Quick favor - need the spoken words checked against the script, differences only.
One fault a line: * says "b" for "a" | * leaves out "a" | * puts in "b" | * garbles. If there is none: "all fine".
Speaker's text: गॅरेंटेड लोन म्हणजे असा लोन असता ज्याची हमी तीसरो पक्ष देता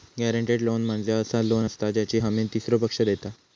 all fine